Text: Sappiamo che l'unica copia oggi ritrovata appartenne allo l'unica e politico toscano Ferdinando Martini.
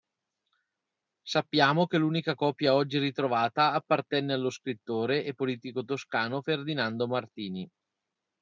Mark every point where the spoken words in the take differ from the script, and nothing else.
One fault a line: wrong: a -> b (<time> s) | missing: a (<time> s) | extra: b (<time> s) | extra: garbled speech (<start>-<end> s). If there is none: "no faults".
wrong: l'unica -> scrittore (4.5 s)